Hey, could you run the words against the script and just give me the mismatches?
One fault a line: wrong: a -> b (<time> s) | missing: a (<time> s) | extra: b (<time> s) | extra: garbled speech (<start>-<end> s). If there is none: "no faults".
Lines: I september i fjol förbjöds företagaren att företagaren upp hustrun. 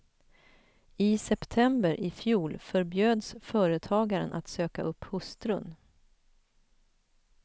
wrong: företagaren -> söka (4.5 s)